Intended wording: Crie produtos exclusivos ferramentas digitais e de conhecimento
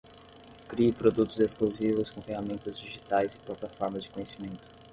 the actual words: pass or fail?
fail